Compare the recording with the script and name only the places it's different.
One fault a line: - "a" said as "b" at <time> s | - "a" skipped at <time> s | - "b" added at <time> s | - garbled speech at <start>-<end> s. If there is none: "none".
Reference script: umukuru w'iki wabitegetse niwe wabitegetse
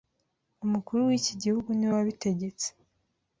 - "wabitegetse" said as "gihugu" at 1.4 s